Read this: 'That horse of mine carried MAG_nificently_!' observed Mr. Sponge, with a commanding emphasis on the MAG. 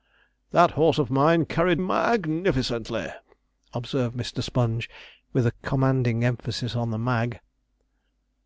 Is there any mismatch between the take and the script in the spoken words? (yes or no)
no